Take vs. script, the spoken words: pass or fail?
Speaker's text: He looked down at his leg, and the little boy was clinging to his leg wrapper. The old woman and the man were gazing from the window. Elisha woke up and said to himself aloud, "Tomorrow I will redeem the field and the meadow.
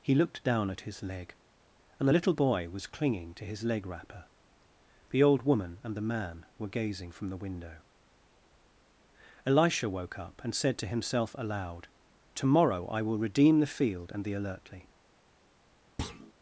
fail